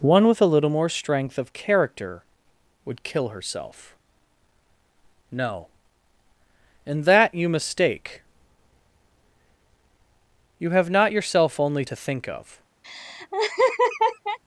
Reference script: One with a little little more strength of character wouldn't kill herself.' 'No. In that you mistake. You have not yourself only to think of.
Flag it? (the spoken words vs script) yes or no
yes